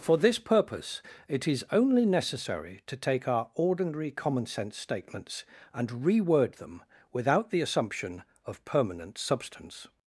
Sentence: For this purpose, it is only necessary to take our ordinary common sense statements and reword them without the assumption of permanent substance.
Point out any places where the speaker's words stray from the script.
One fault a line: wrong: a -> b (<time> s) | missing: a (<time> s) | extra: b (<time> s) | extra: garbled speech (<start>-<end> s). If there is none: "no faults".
no faults